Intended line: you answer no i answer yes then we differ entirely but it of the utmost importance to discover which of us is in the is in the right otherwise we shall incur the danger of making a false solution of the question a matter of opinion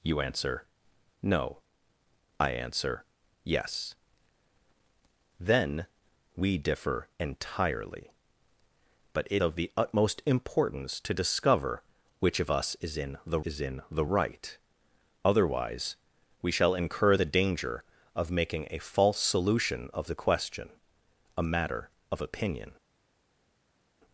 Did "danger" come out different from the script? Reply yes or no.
no